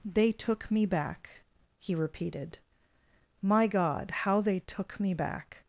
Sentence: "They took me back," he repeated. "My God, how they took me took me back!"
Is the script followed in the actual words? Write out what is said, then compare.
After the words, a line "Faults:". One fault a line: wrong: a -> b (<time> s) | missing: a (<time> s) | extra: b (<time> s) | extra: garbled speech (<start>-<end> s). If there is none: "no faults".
"They took me back," he repeated. "My God, how they took me back!"
Faults:
missing: took me (5.1 s)